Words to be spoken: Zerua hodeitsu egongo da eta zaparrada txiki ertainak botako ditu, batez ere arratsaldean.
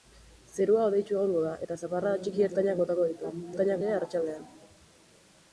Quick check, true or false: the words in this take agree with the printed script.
false